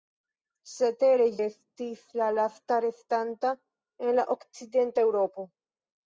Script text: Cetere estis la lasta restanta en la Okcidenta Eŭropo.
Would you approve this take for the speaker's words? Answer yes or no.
yes